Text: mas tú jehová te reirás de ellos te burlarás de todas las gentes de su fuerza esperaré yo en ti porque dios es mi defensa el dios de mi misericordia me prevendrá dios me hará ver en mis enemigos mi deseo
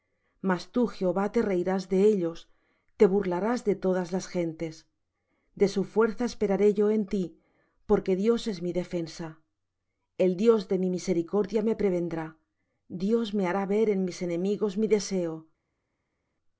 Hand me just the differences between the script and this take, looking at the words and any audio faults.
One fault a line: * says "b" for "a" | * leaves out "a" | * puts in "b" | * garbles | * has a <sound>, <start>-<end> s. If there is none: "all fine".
all fine